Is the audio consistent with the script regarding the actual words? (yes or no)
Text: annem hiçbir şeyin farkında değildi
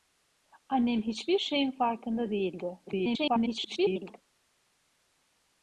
no